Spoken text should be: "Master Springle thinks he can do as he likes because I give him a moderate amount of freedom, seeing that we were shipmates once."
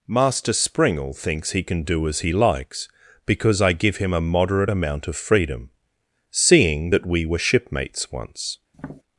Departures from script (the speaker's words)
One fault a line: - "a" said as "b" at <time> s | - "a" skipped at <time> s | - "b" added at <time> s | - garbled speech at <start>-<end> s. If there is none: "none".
none